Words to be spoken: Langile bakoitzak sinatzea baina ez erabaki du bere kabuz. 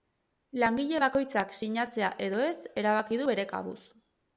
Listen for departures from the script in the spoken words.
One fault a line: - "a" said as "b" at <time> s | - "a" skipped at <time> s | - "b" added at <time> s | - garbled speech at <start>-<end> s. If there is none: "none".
- "baina" said as "edo" at 2.3 s